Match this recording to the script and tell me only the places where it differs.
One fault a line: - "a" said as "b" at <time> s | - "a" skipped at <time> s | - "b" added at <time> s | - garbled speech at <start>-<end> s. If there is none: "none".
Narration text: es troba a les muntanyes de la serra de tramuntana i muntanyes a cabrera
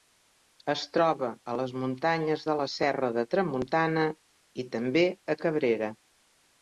- "muntanyes" said as "també" at 4.8 s